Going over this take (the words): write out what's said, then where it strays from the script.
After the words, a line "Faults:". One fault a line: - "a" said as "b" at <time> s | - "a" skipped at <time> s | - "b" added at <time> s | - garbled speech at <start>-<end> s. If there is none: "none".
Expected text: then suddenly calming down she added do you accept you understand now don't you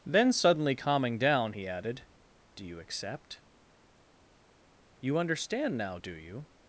then suddenly calming down he added do you accept you understand now do you
Faults:
- "she" said as "he" at 1.5 s
- "don't" said as "do" at 6.0 s